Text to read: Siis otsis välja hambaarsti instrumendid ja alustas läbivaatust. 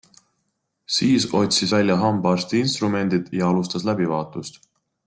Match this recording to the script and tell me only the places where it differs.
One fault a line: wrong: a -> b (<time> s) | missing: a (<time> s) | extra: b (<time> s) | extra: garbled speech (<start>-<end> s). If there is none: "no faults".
no faults